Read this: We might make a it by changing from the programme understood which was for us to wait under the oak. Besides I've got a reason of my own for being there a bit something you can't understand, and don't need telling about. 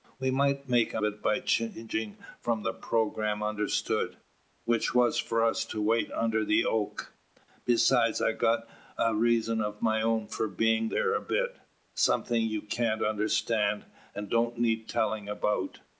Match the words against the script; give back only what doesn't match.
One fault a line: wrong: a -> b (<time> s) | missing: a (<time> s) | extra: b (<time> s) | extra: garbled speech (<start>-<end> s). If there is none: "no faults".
no faults